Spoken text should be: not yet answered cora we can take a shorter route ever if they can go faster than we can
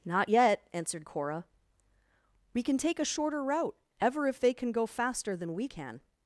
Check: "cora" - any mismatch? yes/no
no